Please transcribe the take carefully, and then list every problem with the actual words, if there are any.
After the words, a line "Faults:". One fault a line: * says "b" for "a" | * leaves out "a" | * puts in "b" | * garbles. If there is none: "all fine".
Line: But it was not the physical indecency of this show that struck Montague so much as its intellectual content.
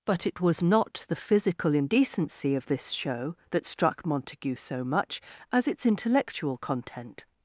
But it was not the physical indecency of this show that struck Montague so much as its intellectual content.
Faults:
all fine